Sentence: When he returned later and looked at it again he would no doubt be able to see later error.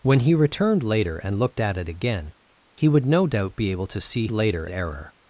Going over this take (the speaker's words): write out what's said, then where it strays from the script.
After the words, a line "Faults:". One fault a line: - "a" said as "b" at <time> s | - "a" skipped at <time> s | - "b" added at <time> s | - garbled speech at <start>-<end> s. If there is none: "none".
When he returned later and looked at it again he would no doubt be able to see later error.
Faults:
none